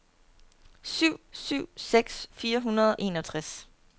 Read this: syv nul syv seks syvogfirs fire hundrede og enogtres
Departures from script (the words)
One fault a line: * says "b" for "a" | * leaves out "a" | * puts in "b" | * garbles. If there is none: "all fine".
* leaves out "nul"
* leaves out "syvogfirs"
* leaves out "og"